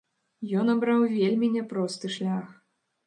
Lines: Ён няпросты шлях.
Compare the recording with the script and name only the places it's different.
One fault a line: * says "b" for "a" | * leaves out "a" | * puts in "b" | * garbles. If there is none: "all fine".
* puts in "абраў вельмі"